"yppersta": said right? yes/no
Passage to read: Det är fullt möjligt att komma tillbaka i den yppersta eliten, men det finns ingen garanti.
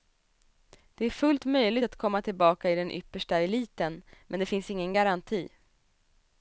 yes